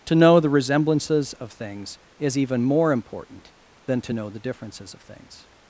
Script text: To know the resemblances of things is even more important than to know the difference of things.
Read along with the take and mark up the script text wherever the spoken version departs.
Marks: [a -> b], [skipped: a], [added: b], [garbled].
To know the resemblances of things is even more important than to know the [difference -> differences] of things.